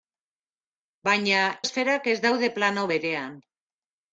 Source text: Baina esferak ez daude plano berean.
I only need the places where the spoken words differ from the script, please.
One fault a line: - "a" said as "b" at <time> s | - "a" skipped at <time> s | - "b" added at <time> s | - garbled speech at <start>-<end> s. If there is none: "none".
none